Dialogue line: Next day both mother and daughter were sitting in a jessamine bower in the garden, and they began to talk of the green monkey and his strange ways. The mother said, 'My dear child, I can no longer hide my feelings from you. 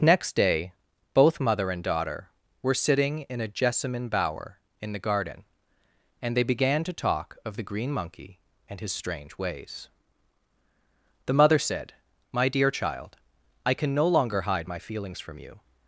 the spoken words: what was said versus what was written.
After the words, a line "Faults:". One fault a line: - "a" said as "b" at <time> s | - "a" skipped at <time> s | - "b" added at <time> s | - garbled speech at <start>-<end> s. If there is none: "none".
Next day both mother and daughter were sitting in a jessamine bower in the garden, and they began to talk of the green monkey and his strange ways. The mother said, 'My dear child, I can no longer hide my feelings from you.
Faults:
none